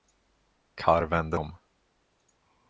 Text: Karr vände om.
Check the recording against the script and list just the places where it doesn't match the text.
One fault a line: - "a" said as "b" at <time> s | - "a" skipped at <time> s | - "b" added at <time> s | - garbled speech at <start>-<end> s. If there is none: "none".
none